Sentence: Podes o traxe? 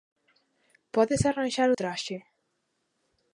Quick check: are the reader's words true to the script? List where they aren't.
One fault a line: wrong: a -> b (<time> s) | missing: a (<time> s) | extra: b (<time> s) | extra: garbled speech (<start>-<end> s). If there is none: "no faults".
extra: arranxar (1.3 s)